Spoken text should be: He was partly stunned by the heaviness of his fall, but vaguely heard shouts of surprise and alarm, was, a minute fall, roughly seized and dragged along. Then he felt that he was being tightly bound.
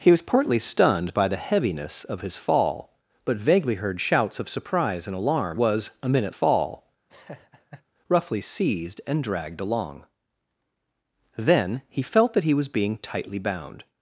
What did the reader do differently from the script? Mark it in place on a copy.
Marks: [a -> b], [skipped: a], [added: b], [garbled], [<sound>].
He was partly stunned by the heaviness of his fall, but vaguely heard shouts of surprise and alarm, was, a minute fall, [laugh] roughly seized and dragged along. Then he felt that he was being tightly bound.